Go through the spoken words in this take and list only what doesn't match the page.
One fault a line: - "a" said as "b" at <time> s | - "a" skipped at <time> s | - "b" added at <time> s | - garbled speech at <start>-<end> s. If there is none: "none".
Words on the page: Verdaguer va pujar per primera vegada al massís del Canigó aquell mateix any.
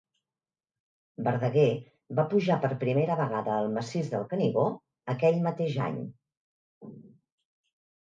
none